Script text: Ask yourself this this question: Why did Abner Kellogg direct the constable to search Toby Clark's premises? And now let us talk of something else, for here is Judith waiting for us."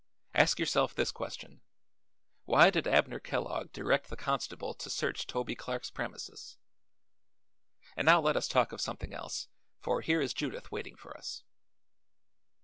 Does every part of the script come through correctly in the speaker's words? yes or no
no